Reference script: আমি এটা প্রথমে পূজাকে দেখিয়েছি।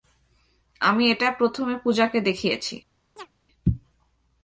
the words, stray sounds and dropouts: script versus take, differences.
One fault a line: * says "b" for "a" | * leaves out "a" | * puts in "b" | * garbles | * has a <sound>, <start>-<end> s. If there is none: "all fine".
* has a chirp, 3.2-3.3 s